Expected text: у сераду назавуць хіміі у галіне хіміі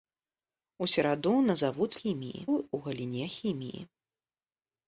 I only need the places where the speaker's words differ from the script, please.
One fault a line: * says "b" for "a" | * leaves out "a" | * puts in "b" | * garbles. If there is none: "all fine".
all fine